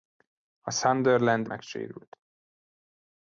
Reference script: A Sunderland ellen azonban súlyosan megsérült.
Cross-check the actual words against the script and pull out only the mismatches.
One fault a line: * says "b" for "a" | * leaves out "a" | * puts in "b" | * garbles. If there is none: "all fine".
* leaves out "ellen azonban súlyosan"